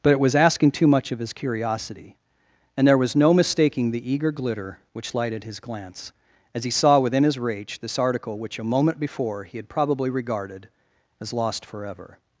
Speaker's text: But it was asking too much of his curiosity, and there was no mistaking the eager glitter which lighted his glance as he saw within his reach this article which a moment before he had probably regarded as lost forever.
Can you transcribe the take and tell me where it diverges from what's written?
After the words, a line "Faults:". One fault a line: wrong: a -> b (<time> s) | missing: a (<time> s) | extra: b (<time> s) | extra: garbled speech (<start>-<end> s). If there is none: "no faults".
But it was asking too much of his curiosity, and there was no mistaking the eager glitter which lighted his glance as he saw within his reach this article which a moment before he had probably regarded as lost forever.
Faults:
no faults